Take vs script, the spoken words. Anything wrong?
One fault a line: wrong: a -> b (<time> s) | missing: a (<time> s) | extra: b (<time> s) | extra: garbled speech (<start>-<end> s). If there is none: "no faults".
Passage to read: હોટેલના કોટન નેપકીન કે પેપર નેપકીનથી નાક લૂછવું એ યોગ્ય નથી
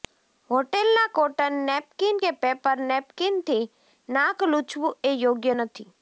no faults